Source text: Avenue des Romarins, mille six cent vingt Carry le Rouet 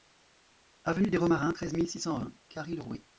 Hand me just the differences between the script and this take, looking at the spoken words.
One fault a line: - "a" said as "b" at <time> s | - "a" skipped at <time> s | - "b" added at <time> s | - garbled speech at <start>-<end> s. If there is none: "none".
- "treize" added at 1.5 s